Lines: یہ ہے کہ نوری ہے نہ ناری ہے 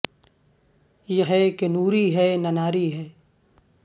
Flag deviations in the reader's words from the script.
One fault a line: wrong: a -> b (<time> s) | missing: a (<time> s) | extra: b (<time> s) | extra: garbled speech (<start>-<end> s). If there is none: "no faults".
no faults